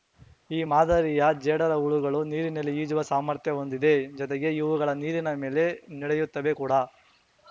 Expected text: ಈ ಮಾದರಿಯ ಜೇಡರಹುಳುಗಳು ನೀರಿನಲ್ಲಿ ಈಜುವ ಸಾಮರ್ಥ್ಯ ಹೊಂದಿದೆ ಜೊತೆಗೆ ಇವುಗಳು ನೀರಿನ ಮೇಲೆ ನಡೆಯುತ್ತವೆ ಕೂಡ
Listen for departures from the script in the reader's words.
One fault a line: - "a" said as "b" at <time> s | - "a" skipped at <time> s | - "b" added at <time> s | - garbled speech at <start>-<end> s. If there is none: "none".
none